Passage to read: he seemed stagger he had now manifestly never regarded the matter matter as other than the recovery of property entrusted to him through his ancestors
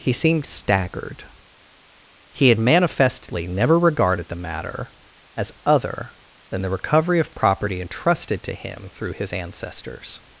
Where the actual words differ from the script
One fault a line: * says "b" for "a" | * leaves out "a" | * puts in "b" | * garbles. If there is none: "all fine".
* says "staggered" for "stagger"
* leaves out "now"
* leaves out "matter"